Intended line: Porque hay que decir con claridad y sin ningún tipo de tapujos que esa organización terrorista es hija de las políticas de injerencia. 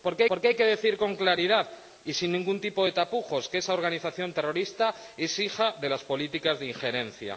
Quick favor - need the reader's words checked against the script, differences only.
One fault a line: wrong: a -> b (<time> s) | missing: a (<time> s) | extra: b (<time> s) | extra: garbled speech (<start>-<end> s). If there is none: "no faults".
extra: porque (0.3 s)